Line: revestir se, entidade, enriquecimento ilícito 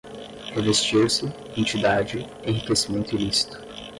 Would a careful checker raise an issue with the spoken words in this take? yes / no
no